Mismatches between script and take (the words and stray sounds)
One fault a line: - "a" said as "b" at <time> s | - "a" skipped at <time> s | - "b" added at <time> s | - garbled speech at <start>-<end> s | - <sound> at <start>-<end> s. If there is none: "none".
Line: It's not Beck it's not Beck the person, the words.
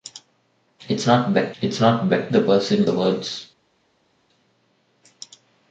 none